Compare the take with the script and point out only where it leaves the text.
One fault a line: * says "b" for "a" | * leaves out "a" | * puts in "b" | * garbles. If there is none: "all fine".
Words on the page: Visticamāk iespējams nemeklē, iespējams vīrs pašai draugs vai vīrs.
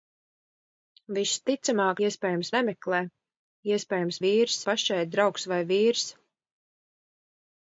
all fine